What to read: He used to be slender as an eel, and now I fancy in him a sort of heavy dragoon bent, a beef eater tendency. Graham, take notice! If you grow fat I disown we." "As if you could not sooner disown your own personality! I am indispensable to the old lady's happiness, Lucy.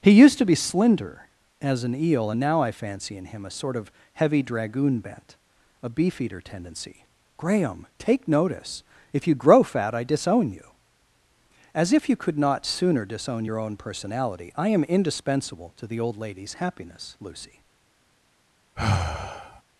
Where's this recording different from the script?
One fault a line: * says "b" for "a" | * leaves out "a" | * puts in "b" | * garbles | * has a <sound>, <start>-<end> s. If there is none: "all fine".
* says "you" for "we"
* has a sigh, 18.8-19.6 s